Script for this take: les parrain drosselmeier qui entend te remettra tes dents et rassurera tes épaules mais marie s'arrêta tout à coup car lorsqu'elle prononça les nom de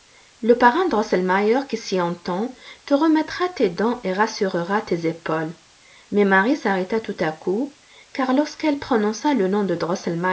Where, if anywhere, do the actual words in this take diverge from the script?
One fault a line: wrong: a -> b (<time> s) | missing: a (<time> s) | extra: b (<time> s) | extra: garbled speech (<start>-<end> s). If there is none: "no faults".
wrong: les -> le (0.4 s)
extra: s'y (1.8 s)
wrong: les -> le (9.3 s)